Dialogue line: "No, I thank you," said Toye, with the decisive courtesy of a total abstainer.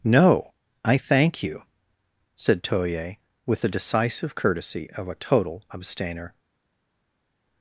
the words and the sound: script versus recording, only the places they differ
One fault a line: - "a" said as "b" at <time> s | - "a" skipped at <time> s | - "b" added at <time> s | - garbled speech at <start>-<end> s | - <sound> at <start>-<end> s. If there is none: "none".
none